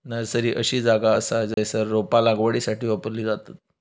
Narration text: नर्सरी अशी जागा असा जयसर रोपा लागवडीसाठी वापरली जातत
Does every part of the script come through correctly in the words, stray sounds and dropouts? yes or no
no